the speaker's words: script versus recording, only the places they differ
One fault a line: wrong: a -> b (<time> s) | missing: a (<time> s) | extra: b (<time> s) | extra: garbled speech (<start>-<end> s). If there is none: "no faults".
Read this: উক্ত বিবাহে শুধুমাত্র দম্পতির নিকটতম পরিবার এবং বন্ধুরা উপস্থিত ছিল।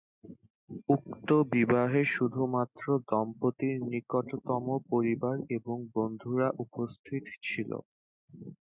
no faults